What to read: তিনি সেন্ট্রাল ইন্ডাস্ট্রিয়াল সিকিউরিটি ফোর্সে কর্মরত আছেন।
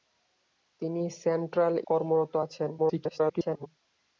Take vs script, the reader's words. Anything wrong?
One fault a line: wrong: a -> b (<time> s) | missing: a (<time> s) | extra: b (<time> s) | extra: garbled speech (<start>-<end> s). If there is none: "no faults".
missing: ইন্ডাস্ট্রিয়াল সিকিউরিটি ফোর্সে (1.8 s)
extra: garbled speech (2.8-3.7 s)